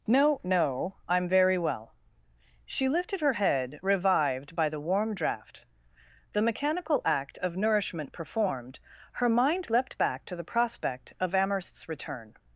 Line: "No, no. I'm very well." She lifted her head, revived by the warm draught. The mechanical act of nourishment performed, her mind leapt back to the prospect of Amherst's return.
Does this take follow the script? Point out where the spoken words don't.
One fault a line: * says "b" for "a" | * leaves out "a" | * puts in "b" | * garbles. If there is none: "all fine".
all fine